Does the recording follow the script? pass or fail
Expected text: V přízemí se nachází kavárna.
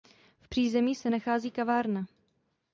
pass